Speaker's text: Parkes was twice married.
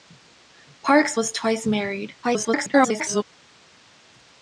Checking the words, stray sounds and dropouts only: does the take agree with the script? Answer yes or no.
no